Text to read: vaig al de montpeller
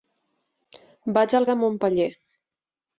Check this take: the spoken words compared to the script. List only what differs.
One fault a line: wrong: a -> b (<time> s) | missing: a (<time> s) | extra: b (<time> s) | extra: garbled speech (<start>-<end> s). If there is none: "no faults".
no faults